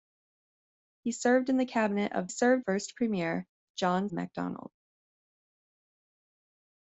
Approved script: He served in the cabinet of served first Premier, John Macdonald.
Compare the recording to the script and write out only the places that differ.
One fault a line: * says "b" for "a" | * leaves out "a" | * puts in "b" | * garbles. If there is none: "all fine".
all fine